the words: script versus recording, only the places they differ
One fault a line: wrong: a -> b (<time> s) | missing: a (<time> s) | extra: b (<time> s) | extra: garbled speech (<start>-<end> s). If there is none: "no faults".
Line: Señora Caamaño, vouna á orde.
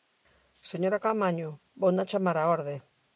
extra: chamar (2.1 s)